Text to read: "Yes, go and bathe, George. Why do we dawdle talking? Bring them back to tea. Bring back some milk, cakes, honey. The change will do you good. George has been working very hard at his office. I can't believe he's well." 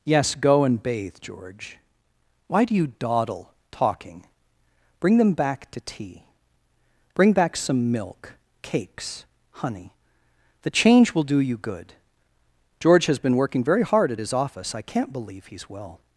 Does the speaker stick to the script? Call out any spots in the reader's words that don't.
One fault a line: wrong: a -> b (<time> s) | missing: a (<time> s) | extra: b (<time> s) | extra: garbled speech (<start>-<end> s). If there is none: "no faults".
wrong: we -> you (2.8 s)